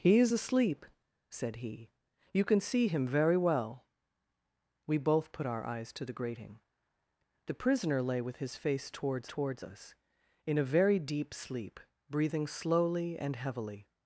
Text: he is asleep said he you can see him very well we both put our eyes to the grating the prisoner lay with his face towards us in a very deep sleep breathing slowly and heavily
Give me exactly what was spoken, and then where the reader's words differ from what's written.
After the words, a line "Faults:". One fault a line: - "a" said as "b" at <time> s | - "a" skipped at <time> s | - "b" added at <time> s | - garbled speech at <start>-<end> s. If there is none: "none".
he is asleep said he you can see him very well we both put our eyes to the grating the prisoner lay with his face towards towards us in a very deep sleep breathing slowly and heavily
Faults:
- "towards" added at 9.3 s